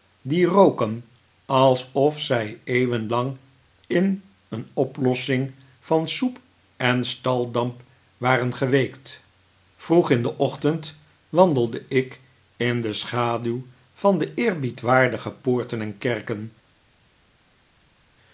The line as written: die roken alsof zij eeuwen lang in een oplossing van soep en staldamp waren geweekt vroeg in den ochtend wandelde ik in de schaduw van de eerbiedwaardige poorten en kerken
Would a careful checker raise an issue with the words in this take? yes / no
no